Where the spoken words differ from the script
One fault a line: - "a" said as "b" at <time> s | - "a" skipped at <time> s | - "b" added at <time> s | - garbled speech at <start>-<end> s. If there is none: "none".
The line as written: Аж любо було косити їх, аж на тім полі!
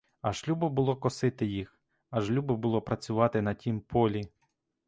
- "любо було працювати" added at 2.3 s